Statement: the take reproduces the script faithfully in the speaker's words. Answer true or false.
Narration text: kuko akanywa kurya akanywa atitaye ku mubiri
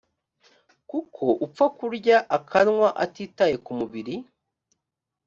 false